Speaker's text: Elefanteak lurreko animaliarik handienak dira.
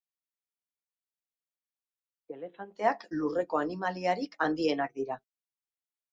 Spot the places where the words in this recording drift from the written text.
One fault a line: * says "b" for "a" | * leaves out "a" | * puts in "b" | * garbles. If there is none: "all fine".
all fine